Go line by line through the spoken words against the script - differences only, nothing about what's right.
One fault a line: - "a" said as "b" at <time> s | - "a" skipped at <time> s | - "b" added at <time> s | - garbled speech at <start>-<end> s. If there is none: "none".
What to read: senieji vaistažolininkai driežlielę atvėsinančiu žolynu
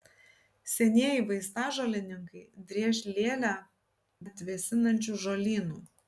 none